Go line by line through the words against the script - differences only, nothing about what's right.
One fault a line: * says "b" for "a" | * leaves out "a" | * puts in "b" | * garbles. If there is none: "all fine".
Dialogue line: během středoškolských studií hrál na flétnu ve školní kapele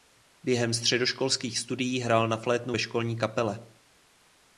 all fine